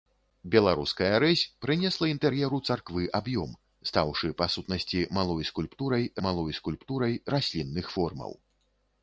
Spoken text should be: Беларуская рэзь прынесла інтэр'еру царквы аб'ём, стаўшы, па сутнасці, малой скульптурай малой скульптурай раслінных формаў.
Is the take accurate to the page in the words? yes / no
yes